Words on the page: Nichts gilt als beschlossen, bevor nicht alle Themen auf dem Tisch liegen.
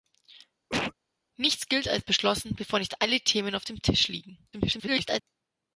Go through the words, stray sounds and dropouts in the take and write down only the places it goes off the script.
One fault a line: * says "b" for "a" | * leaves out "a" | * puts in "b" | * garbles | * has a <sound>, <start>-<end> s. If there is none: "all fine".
* has a cough, 0.7-0.9 s
* garbles